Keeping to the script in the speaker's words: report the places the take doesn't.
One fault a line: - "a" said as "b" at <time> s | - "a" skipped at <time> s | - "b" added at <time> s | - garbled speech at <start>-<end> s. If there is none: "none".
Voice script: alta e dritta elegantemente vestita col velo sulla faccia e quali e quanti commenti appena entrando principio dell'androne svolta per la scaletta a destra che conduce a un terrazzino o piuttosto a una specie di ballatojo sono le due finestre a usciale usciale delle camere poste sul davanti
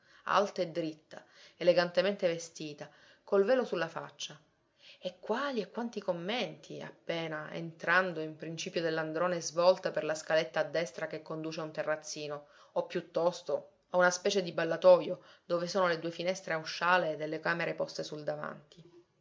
- "in" added at 8.2 s
- "dove" added at 15.4 s
- "usciale" skipped at 17.2 s